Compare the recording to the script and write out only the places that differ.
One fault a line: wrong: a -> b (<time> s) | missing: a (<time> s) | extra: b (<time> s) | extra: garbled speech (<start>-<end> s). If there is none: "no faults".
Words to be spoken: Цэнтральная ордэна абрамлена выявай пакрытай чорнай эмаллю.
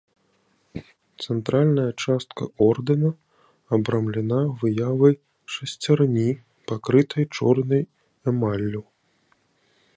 extra: частка (2.0 s)
extra: шасцярні (5.6 s)